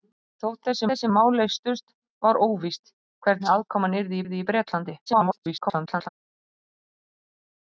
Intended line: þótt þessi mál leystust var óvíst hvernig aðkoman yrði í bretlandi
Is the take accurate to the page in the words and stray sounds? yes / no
no